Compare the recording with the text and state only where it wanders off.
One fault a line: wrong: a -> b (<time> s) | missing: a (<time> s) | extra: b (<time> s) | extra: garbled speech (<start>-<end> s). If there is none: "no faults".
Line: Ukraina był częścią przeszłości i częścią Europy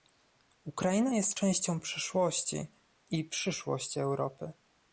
wrong: był -> jest (1.1 s)
wrong: częścią -> przyszłości (3.2 s)